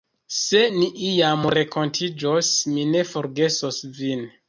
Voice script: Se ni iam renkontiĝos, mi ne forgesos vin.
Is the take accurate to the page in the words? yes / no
yes